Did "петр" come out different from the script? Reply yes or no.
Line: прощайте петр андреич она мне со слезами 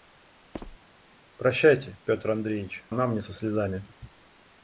no